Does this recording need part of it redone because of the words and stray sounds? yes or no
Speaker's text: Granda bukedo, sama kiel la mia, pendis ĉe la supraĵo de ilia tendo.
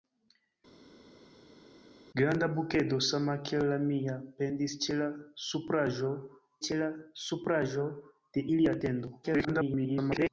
yes